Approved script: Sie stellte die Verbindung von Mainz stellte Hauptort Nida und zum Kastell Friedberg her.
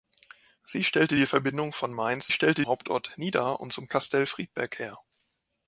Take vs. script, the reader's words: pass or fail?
pass